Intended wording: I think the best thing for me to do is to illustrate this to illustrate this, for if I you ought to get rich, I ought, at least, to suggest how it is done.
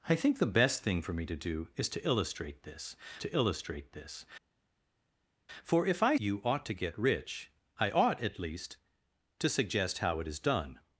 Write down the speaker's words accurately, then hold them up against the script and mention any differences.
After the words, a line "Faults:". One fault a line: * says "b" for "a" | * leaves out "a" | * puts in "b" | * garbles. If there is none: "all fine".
I think the best thing for me to do is to illustrate this to illustrate this, for if I you ought to get rich, I ought, at least, to suggest how it is done.
Faults:
all fine